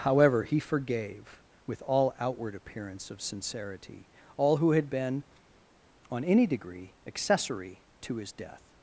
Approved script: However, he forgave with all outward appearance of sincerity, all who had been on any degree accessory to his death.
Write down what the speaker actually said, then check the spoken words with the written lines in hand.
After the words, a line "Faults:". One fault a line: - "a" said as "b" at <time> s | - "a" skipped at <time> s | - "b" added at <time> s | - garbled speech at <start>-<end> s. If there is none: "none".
However, he forgave with all outward appearance of sincerity, all who had been on any degree accessory to his death.
Faults:
none